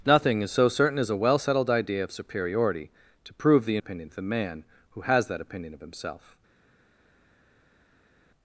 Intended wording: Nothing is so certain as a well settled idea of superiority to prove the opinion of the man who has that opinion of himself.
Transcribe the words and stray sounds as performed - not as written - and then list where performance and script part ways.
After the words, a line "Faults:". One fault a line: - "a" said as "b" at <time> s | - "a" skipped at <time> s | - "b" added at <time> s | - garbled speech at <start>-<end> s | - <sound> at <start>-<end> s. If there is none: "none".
Nothing is so certain as a well settled idea of superiority to prove the opinion of the man who has that opinion of himself.
Faults:
none